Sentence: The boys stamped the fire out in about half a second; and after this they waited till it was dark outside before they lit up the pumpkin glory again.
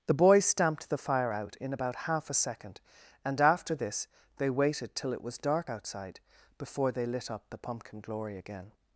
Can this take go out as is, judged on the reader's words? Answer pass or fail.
pass